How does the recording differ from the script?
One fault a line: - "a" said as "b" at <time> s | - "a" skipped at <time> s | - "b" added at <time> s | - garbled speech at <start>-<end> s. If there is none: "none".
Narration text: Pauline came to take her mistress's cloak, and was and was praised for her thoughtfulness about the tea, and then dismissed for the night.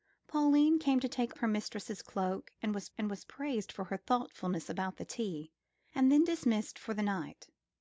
none